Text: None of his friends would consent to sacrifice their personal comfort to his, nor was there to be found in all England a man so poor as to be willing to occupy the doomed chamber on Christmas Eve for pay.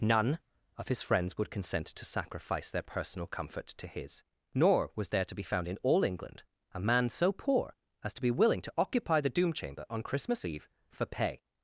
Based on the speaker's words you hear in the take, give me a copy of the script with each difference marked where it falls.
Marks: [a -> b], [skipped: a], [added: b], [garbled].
None of his friends would consent to sacrifice their personal comfort to his, nor was there to be found in all England a man so poor as to be willing to occupy the [doomed -> doom] chamber on Christmas Eve for pay.